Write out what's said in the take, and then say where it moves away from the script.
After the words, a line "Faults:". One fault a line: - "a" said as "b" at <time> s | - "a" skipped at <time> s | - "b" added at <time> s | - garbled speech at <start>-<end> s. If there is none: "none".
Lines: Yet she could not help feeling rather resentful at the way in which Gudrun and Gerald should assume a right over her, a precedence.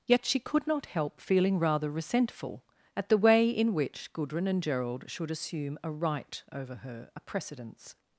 Yet she could not help feeling rather resentful at the way in which Gudrun and Gerald should assume a right over her, a precedence.
Faults:
none